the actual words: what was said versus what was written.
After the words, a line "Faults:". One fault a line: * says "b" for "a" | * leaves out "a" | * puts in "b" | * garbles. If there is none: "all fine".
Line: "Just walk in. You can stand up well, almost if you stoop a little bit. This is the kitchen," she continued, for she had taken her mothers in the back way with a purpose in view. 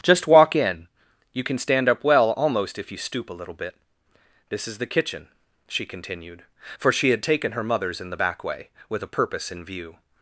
"Just walk in. You can stand up well, almost if you stoop a little bit. This is the kitchen," she continued, for she had taken her mothers in the back way with a purpose in view.
Faults:
all fine